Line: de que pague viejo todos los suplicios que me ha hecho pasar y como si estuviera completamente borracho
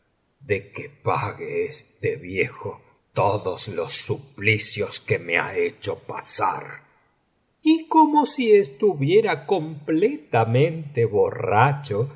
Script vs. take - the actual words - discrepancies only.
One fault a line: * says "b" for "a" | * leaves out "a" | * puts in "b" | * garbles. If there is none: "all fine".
* puts in "este"